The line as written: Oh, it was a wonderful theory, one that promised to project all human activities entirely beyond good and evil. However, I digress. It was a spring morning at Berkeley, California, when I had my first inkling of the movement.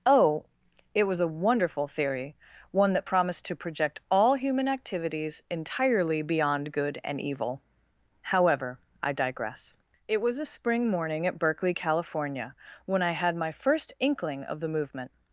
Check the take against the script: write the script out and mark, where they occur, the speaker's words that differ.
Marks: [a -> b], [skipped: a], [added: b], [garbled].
Oh, it was a wonderful theory, one that promised to project all human activities entirely beyond good and evil. However, I digress. It was a spring morning at Berkeley, California, when I had my first inkling of the movement.